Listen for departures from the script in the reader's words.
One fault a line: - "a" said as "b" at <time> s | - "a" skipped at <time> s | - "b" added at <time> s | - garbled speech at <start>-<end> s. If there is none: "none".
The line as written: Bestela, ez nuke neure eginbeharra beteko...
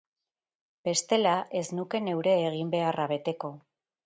none